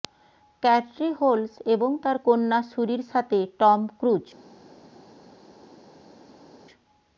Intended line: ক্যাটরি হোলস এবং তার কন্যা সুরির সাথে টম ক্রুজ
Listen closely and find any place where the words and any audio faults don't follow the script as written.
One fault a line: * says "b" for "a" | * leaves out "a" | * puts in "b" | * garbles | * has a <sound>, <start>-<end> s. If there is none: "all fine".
all fine